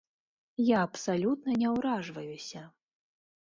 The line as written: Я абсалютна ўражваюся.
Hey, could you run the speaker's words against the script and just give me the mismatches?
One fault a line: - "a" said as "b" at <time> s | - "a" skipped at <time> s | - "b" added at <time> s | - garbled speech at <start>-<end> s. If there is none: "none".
- "не" added at 1.7 s